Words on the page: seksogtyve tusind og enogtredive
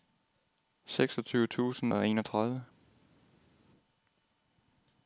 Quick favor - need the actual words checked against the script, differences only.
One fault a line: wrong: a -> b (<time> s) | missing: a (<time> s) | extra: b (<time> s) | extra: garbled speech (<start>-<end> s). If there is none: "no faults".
no faults